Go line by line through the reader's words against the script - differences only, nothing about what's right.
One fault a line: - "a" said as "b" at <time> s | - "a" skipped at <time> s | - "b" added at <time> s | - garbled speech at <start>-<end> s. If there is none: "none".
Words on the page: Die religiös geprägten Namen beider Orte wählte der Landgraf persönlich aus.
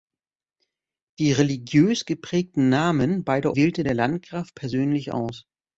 - "Orte" skipped at 3.5 s